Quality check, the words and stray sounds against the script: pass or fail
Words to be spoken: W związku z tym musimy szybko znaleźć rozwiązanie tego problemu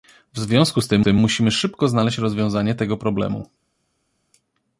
fail